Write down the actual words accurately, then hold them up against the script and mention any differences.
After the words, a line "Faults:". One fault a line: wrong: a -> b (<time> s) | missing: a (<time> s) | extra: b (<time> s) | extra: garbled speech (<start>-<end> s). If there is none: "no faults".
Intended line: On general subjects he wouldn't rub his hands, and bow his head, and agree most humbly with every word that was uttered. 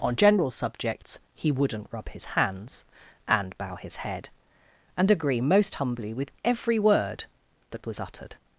On general subjects he wouldn't rub his hands, and bow his head, and agree most humbly with every word that was uttered.
Faults:
no faults